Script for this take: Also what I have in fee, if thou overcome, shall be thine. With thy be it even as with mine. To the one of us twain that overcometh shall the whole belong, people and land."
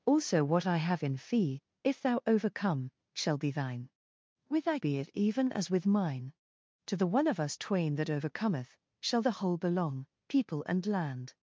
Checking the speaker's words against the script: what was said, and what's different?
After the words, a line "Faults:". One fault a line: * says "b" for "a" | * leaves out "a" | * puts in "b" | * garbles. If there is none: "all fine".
Also what I have in fee, if thou overcome, shall be thine. With thy be it even as with mine. To the one of us twain that overcometh shall the whole belong, people and land."
Faults:
all fine